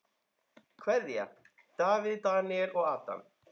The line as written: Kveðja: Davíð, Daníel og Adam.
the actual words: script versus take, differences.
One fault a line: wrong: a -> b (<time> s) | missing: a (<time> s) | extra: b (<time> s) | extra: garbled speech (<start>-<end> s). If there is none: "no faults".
no faults